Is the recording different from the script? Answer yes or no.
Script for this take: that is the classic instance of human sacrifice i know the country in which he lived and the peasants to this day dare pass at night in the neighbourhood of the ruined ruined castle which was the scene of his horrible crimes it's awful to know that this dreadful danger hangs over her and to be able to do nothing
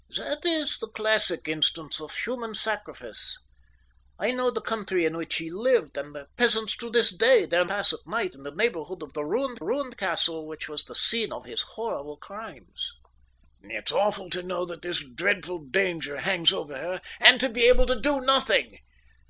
no